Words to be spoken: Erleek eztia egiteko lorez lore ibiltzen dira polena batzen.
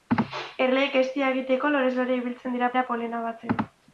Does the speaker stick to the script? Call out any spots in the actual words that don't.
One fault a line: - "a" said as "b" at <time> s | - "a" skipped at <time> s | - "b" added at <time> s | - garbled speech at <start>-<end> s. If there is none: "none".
- "dira" added at 2.7 s